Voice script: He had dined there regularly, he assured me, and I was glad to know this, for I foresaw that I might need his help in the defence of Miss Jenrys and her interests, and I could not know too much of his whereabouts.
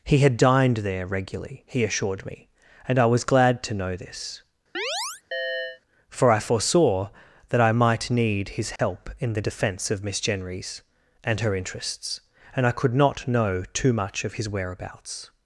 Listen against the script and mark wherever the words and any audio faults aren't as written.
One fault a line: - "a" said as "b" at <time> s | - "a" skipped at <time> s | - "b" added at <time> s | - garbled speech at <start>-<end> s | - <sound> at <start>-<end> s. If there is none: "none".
- chirp at 4.7-5.8 s
- dropout at 8.8-8.8 s